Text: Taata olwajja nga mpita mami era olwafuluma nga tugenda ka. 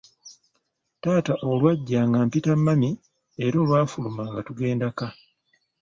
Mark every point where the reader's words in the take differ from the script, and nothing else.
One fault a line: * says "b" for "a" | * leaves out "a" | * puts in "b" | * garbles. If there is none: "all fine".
all fine